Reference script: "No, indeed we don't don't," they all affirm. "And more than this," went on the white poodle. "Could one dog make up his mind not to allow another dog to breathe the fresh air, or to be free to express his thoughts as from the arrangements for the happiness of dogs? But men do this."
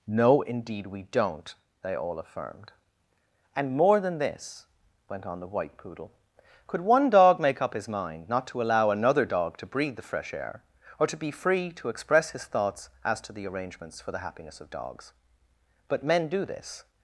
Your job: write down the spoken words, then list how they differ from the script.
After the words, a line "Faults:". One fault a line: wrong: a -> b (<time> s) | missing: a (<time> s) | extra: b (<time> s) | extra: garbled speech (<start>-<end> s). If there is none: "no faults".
"No, indeed we don't," they all affirmed. "And more than this," went on the white poodle. "Could one dog make up his mind not to allow another dog to breathe the fresh air, or to be free to express his thoughts as to the arrangements for the happiness of dogs? But men do this."
Faults:
missing: don't (1.5 s)
wrong: affirm -> affirmed (2.2 s)
wrong: from -> to (13.2 s)